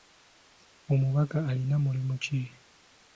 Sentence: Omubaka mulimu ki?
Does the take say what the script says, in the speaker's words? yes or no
no